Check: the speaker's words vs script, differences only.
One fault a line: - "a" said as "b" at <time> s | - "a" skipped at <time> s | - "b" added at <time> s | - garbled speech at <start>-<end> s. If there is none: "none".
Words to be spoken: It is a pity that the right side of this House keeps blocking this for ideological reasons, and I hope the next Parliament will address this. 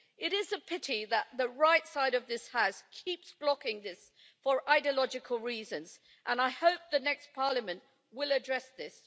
none